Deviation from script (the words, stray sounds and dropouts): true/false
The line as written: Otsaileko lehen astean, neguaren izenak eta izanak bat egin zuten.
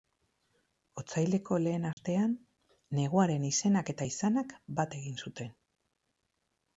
true